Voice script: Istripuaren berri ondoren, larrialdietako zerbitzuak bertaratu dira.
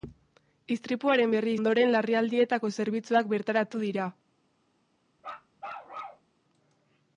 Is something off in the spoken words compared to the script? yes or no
no